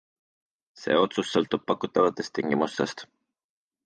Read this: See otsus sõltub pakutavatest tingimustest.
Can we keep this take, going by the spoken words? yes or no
yes